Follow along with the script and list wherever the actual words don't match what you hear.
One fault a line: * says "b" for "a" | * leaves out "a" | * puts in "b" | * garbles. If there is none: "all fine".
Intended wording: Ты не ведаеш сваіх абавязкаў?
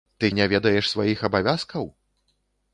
all fine